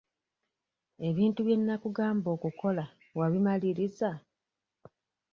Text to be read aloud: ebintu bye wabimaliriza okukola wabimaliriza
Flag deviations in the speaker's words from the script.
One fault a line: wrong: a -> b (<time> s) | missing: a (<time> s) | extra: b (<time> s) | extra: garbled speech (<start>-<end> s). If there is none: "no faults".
wrong: wabimaliriza -> nnakugamba (1.6 s)